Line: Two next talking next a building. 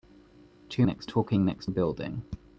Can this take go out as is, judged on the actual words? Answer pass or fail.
pass